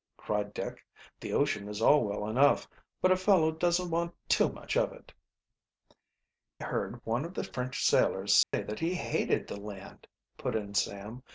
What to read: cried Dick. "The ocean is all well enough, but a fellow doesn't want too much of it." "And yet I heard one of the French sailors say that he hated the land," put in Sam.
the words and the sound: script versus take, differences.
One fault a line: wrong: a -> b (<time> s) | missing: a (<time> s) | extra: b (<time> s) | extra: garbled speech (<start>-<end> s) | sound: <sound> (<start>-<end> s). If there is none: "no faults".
missing: And yet I (5.1 s)
sound: dropout (8.4-8.5 s)